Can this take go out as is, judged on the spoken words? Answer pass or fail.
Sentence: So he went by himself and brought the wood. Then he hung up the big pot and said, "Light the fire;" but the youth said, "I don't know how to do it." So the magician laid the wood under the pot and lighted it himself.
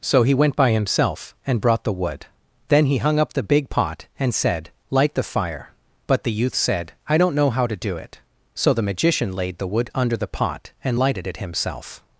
pass